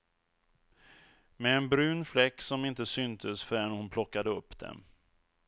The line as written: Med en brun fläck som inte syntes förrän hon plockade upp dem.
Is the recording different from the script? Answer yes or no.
no